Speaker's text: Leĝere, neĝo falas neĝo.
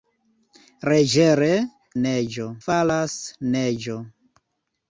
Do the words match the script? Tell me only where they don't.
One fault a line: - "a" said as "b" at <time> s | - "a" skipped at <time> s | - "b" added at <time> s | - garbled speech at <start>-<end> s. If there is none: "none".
none